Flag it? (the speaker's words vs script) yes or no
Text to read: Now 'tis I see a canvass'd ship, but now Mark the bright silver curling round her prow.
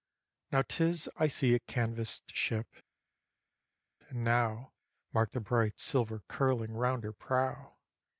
yes